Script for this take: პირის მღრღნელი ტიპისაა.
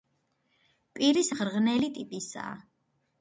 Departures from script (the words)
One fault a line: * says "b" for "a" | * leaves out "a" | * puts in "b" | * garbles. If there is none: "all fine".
all fine